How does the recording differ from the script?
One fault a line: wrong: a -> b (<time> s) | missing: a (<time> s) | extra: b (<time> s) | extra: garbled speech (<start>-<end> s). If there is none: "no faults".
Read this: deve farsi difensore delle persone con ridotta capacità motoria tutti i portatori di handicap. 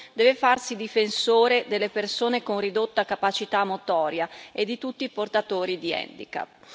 extra: e di (4.5 s)